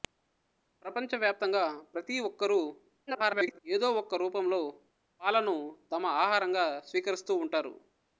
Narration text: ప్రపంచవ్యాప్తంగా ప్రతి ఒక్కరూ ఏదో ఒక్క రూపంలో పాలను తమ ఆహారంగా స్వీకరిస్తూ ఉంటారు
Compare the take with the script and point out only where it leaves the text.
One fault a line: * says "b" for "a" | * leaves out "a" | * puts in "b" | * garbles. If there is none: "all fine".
* garbles